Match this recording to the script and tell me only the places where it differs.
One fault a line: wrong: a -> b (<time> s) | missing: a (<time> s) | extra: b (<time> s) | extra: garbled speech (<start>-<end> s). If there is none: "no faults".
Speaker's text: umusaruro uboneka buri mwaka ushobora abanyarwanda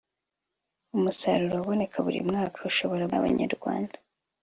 no faults